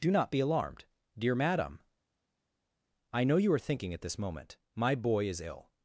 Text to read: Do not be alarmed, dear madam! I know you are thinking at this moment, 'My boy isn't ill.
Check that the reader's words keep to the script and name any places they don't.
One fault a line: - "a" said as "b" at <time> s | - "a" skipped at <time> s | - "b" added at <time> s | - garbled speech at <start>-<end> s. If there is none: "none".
- "isn't" said as "is" at 5.3 s